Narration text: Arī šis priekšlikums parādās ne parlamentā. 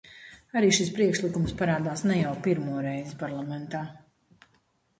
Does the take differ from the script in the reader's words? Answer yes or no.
yes